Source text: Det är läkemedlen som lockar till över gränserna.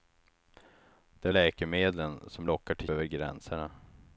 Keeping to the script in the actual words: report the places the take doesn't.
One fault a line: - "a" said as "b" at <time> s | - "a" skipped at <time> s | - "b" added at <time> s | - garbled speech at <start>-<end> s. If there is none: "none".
none